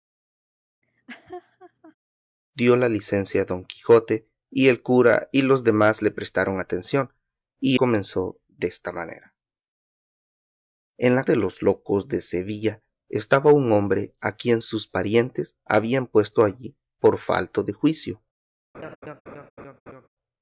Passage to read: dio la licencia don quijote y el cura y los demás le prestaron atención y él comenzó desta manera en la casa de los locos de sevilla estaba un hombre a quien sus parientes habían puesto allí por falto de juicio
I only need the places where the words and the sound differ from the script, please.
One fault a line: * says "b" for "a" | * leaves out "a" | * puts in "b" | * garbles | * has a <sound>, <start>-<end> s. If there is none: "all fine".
* has a laugh, 0.8-1.9 s
* leaves out "él"
* leaves out "casa"
* has a laugh, 18.7-20.1 s